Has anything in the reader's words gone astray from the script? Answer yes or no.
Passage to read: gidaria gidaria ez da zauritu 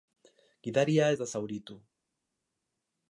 yes